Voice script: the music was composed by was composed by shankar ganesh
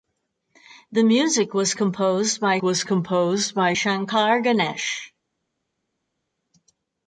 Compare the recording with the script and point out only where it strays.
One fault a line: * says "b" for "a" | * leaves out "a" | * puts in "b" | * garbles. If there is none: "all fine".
all fine